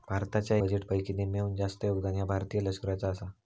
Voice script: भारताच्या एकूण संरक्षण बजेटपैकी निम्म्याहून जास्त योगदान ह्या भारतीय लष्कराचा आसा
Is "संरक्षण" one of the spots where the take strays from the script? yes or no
yes